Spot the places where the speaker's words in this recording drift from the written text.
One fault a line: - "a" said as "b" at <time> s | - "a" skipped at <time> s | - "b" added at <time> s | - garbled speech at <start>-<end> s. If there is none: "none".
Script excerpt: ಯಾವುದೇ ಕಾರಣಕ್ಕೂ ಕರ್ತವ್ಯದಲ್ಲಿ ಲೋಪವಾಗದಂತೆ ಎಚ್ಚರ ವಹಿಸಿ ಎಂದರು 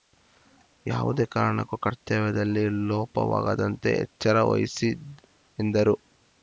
none